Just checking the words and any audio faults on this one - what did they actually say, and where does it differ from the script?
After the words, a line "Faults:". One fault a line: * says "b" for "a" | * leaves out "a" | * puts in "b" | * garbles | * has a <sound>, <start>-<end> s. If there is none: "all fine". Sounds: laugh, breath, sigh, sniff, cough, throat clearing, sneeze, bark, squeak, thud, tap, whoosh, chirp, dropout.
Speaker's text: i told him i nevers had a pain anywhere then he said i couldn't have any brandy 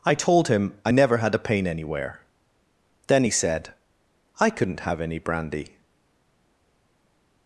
i told him i never had a pain anywhere then he said i couldn't have any brandy
Faults:
* says "never" for "nevers"